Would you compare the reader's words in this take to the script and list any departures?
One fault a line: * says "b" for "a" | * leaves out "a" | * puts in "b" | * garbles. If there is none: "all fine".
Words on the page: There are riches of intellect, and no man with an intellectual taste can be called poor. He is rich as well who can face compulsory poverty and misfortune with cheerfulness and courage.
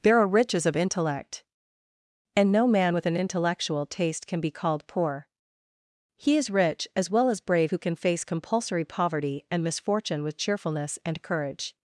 * puts in "as brave"